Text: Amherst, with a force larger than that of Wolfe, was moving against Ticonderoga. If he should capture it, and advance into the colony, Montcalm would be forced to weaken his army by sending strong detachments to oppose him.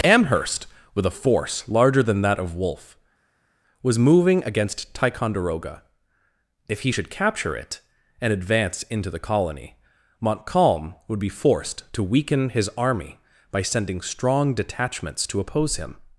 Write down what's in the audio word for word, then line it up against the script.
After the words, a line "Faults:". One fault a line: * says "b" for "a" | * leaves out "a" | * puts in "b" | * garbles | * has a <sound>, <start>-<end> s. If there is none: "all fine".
Amherst, with a force larger than that of Wolfe, was moving against Ticonderoga. If he should capture it, and advance into the colony, Montcalm would be forced to weaken his army by sending strong detachments to oppose him.
Faults:
all fine